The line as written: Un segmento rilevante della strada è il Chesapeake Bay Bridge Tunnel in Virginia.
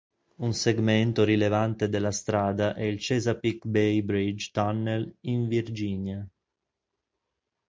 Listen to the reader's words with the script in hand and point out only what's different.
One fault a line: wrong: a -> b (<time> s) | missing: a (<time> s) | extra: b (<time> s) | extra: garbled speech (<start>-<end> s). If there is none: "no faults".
no faults